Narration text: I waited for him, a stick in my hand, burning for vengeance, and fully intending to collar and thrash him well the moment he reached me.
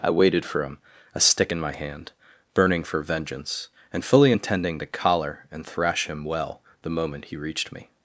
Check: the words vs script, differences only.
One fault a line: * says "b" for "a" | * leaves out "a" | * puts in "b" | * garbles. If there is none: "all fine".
all fine